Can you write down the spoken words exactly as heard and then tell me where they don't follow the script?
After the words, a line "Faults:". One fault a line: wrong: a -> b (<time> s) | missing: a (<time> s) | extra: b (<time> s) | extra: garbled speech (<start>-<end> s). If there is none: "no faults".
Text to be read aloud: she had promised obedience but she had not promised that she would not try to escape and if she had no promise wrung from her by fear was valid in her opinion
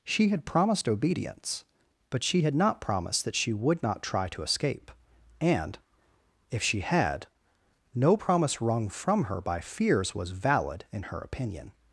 she had promised obedience but she had not promised that she would not try to escape and if she had no promise wrung from her by fears was valid in her opinion
Faults:
wrong: fear -> fears (9.6 s)